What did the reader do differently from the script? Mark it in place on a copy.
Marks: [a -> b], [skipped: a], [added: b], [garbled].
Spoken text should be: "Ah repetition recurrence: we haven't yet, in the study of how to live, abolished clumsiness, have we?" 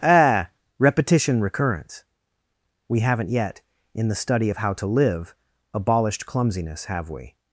"Ah repetition recurrence: we haven't yet, in the study of how to live, abolished clumsiness, have we?"